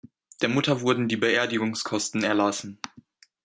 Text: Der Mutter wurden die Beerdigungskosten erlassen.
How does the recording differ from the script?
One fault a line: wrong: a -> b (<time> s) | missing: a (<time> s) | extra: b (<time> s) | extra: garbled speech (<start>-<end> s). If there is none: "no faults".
no faults